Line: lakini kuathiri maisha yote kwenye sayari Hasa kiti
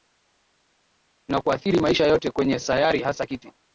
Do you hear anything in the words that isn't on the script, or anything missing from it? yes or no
yes